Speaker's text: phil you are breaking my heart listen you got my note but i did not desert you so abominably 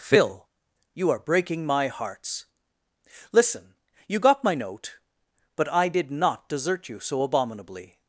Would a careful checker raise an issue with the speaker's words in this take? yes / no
yes